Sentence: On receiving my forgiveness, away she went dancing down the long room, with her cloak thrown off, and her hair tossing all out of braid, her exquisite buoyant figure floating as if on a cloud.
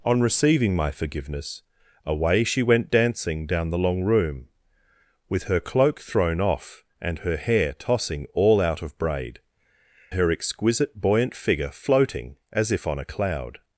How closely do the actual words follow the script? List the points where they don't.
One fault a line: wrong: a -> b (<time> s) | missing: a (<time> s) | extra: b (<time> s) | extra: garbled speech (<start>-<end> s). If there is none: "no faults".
no faults